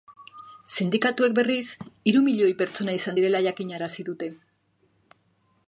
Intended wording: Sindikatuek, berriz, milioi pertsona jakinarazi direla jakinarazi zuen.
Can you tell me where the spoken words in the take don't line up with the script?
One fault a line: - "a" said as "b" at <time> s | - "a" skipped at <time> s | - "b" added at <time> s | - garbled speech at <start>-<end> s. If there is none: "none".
- "hiru" added at 2.1 s
- "jakinarazi" said as "izan" at 3.0 s
- "zuen" said as "dute" at 4.1 s